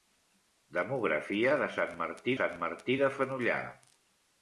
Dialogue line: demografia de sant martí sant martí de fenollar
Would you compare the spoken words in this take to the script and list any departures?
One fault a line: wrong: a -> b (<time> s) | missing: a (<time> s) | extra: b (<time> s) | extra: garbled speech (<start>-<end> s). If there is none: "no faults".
no faults